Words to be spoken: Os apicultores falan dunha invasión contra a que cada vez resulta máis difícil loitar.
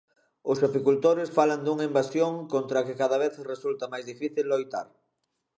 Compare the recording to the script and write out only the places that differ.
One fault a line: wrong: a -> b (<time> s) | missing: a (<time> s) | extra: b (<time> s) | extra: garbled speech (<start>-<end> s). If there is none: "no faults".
no faults